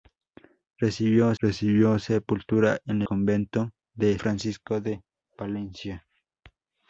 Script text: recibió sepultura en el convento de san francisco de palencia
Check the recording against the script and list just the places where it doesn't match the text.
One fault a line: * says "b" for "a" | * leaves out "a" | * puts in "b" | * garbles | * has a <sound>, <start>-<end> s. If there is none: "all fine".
* puts in "recibió"
* leaves out "el"
* leaves out "san"